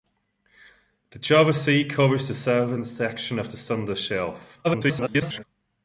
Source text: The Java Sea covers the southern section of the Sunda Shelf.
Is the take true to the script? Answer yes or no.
no